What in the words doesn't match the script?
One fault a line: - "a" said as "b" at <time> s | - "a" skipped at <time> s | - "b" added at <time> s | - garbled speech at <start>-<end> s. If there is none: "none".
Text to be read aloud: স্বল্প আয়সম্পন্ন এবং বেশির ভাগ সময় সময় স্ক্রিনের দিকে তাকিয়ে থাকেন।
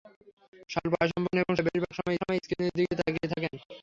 none